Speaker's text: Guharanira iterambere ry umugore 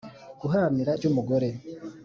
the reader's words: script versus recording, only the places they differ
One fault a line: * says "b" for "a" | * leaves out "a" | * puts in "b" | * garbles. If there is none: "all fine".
* leaves out "iterambere"